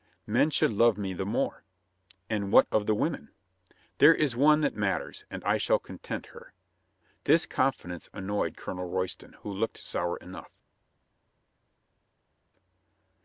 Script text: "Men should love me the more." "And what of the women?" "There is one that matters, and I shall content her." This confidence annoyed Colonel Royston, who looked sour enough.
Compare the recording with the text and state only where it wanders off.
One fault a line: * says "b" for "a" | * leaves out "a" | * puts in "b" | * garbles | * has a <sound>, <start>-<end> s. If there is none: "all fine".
all fine